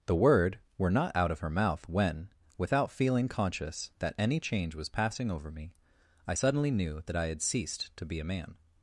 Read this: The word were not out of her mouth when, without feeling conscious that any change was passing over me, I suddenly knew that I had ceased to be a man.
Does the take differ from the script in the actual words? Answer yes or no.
no